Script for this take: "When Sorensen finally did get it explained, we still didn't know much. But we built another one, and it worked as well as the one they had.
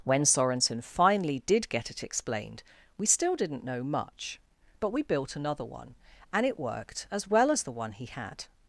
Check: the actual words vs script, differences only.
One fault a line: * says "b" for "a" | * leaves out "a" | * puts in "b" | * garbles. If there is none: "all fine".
* says "he" for "they"